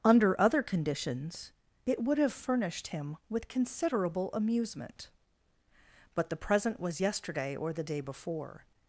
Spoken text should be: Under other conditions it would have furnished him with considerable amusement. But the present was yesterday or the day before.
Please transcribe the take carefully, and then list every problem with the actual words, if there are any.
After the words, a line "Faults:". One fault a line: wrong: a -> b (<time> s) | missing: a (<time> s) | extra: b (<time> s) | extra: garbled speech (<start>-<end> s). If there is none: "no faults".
Under other conditions it would have furnished him with considerable amusement. But the present was yesterday or the day before.
Faults:
no faults